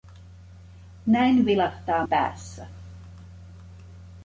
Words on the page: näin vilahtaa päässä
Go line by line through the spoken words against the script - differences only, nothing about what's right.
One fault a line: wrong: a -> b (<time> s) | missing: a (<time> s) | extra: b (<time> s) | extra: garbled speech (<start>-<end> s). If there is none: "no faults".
no faults